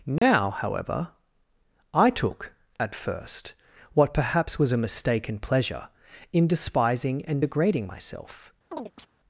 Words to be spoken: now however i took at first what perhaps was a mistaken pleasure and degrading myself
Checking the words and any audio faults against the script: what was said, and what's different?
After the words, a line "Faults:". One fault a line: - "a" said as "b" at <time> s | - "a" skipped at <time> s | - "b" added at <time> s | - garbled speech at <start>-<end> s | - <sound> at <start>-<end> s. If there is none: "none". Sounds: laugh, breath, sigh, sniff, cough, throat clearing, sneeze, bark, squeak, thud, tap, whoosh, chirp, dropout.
now however i took at first what perhaps was a mistaken pleasure in despising and degrading myself
Faults:
- dropout at 0.2-0.2 s
- "in despising" added at 6.3 s
- chirp at 8.7-9.1 s